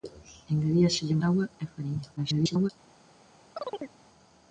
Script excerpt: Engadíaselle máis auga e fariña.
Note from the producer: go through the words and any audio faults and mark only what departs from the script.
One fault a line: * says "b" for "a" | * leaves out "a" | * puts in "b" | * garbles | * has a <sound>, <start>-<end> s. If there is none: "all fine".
* leaves out "máis"
* garbles
* has a chirp, 3.6-4.0 s